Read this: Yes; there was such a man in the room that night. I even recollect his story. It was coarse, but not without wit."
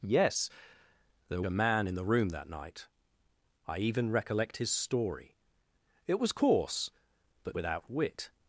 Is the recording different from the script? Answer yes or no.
yes